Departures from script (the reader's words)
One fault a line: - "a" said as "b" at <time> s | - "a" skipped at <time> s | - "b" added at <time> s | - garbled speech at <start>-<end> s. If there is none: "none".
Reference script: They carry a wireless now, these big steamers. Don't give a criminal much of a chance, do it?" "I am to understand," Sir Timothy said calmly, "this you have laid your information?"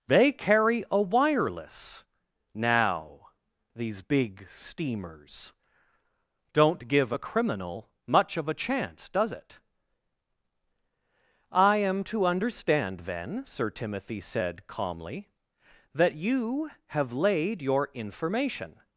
- "do" said as "does" at 9.1 s
- "then" added at 13.0 s
- "this" said as "that" at 15.9 s